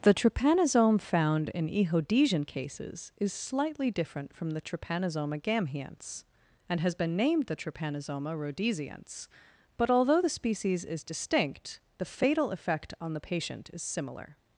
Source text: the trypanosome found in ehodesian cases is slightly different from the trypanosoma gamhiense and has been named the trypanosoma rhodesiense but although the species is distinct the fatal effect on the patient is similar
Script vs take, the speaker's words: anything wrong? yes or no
no